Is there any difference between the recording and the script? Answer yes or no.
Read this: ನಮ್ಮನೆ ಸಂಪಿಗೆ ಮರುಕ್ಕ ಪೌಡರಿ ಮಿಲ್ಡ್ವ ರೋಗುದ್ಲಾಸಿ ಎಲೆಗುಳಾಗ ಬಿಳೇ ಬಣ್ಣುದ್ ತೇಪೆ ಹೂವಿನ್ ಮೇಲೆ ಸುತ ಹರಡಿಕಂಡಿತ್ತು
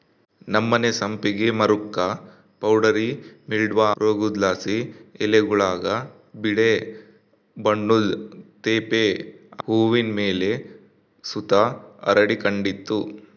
no